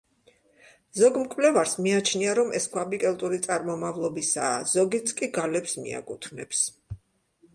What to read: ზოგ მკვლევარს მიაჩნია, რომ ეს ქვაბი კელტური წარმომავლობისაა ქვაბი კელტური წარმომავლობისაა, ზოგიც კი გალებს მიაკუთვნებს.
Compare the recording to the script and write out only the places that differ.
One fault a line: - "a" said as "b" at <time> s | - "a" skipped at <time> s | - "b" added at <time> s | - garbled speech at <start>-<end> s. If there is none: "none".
- "ქვაბი კელტური წარმომავლობისაა" skipped at 4.6 s